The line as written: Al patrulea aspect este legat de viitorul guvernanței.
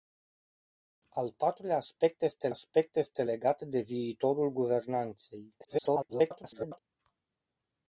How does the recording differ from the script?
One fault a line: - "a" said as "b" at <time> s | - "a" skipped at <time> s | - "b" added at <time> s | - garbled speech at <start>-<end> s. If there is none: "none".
- "aspect este" added at 2.5 s
- garbled speech at 5.6-6.8 s